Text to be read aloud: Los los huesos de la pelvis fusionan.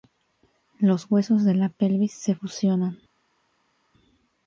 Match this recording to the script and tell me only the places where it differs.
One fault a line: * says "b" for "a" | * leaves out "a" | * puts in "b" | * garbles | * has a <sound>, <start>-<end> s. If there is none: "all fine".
* leaves out "los"
* puts in "se"